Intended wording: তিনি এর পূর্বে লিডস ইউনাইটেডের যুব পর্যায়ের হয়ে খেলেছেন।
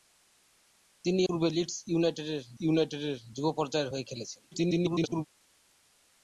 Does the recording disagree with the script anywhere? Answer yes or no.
yes